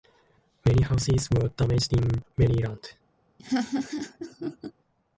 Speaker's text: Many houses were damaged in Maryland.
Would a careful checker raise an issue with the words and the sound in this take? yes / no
yes